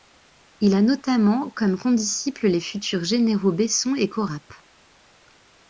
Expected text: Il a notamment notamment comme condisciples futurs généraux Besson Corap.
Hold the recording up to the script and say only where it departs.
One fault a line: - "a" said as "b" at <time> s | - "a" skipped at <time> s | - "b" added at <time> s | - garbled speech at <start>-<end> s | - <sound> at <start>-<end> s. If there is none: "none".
- "notamment" skipped at 1.5 s
- "les" added at 2.5 s
- "et" added at 3.9 s